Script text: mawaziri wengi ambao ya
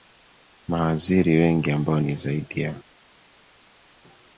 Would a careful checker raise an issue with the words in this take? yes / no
yes